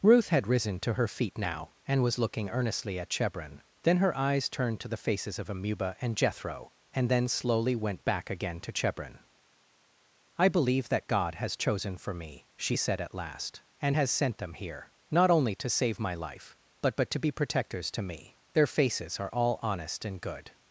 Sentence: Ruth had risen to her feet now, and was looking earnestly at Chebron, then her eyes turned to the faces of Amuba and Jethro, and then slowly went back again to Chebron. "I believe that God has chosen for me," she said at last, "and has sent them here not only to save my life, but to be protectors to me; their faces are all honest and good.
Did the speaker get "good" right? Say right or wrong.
right